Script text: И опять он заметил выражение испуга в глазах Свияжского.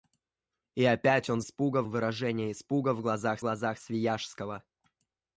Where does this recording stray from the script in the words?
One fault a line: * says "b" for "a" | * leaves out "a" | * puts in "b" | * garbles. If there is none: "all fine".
* says "испуга" for "заметил"
* puts in "глазах"